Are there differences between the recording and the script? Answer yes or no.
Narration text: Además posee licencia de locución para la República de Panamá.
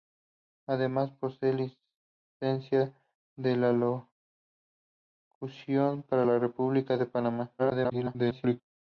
yes